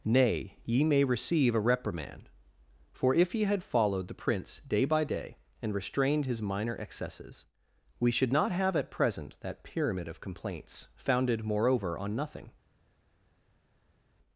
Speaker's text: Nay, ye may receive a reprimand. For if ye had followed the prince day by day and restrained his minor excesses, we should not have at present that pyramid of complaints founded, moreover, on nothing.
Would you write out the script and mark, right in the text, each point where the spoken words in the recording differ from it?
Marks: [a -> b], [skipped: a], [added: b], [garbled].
Nay, ye may receive a reprimand. For if ye had followed the prince day by day and restrained his minor excesses, we should not have at present that pyramid of complaints founded, moreover, on nothing.